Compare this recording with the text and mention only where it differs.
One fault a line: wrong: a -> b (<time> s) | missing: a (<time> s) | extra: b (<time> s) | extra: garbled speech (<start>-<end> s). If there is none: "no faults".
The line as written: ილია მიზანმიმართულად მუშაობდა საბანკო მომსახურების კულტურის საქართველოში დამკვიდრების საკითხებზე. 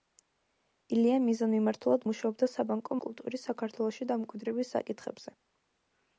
missing: მომსახურების (3.0 s)